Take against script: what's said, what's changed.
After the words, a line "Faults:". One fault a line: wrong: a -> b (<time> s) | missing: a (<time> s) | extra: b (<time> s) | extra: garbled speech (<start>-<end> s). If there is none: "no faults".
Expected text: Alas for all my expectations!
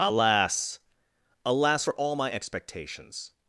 Alas alas for all my expectations!
Faults:
extra: alas (1.4 s)